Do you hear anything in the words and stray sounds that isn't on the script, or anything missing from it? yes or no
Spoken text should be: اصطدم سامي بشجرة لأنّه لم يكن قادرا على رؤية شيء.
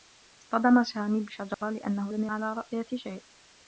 yes